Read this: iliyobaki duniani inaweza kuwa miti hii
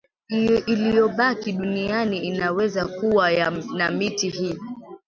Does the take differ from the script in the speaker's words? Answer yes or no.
yes